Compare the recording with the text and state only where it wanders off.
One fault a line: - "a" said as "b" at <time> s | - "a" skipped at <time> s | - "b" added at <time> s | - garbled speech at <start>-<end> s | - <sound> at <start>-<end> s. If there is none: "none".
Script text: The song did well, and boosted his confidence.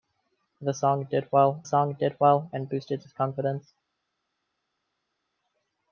- "song did well" added at 1.6 s